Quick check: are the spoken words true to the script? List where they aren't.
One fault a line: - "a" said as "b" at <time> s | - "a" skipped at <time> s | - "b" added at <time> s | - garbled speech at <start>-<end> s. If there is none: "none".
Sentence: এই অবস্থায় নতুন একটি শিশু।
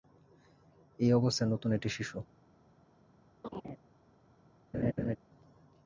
none